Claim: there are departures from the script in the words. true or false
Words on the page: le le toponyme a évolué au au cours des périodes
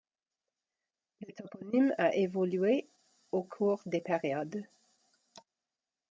true